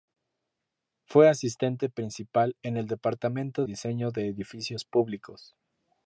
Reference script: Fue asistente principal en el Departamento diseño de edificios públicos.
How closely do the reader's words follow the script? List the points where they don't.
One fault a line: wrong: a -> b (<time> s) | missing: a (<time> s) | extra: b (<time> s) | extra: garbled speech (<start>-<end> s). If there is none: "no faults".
no faults